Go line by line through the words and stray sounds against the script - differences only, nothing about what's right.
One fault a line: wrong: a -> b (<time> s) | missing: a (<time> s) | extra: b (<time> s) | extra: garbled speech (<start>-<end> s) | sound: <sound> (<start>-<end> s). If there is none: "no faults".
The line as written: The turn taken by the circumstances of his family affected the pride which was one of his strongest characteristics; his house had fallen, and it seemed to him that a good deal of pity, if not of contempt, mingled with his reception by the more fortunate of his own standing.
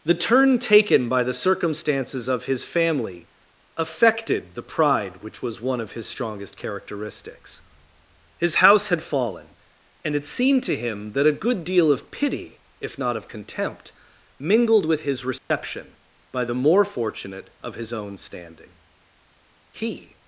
sound: dropout (15.4-15.5 s)
extra: He (19.7 s)